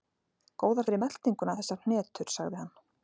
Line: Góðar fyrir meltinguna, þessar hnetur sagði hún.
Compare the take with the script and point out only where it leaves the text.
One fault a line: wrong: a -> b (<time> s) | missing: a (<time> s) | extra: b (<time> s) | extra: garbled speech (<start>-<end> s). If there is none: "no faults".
wrong: hún -> hann (2.6 s)